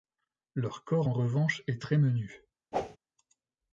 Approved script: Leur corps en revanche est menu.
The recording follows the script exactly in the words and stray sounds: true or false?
false